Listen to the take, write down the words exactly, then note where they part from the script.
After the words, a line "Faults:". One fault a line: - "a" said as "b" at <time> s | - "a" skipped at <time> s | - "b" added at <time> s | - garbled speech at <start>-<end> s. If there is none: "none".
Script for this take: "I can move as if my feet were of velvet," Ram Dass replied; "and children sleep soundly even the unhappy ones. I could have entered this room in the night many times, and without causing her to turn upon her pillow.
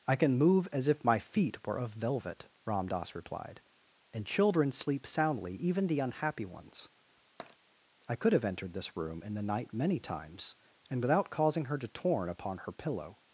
"I can move as if my feet were of velvet," Ram Dass replied; "and children sleep soundly even the unhappy ones. I could have entered this room in the night many times, and without causing her to torn upon her pillow.
Faults:
- "turn" said as "torn" at 11.9 s